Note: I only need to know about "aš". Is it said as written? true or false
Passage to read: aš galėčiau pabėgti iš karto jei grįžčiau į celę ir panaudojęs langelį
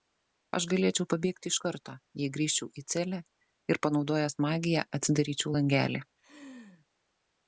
true